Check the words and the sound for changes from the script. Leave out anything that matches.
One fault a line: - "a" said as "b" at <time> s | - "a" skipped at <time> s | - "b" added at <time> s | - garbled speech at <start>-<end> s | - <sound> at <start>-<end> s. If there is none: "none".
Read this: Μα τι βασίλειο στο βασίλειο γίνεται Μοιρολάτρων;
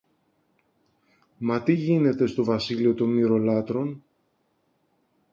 - "βασίλειο" said as "γίνεται" at 1.7 s
- "γίνεται" said as "των" at 2.9 s